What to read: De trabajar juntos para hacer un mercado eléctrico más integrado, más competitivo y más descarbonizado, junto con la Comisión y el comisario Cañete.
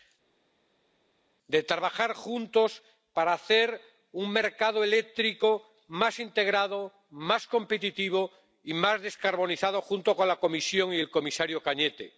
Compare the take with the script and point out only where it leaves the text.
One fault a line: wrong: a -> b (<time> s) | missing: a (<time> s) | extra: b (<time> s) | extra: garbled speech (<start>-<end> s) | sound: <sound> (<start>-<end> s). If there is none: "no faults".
no faults